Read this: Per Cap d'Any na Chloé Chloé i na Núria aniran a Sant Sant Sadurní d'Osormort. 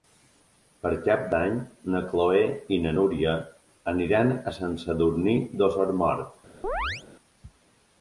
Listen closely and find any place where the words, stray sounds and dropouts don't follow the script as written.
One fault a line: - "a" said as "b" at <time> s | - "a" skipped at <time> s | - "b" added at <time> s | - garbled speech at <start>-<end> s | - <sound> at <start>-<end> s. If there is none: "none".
- "Chloé" skipped at 2.4 s
- "Sant" skipped at 4.8 s
- chirp at 6.6-7.0 s